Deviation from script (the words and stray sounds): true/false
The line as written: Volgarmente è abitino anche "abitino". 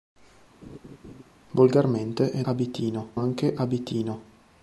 true